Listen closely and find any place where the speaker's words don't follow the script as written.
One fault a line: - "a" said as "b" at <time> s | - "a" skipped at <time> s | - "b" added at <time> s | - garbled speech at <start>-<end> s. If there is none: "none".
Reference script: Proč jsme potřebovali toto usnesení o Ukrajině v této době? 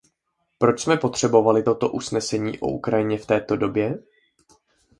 none